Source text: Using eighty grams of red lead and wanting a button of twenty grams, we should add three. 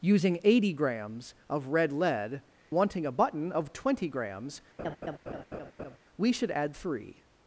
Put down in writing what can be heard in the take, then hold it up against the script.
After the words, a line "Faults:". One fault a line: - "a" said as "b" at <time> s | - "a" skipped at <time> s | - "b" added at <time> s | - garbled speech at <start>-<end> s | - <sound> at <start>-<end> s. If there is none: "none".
Using eighty grams of red lead wanting a button of twenty grams, we should add three.
Faults:
- "and" skipped at 2.4 s
- laugh at 4.8-6.0 s